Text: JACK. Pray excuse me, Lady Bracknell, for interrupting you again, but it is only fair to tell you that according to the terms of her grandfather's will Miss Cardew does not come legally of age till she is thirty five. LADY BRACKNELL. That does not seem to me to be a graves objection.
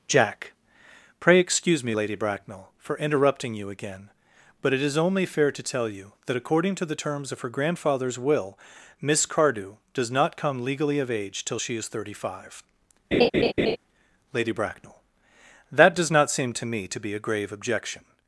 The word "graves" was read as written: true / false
false